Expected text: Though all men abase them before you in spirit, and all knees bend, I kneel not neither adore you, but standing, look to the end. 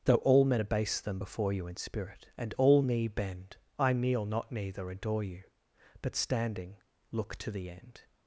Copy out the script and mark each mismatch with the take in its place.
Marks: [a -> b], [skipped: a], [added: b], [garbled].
Though all men abase them before you in spirit, and all [knees -> knee] bend, I kneel not neither adore you, but standing, look to the end.